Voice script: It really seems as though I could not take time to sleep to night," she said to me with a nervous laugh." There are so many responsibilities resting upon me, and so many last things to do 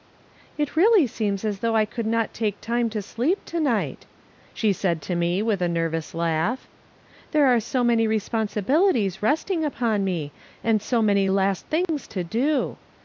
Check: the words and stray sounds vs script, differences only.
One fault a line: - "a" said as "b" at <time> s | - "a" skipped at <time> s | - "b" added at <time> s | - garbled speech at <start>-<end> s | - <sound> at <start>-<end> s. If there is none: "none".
- dropout at 11.8-11.9 s